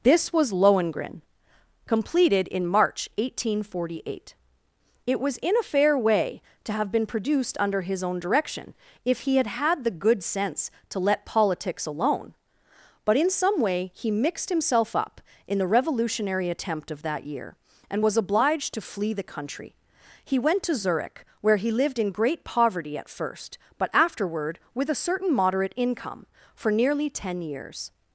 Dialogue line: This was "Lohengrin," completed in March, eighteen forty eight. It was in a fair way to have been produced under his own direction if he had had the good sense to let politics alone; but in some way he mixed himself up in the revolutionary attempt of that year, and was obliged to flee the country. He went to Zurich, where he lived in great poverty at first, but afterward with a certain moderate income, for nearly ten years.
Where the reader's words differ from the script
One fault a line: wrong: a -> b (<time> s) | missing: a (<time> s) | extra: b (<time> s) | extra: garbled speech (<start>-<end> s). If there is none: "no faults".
no faults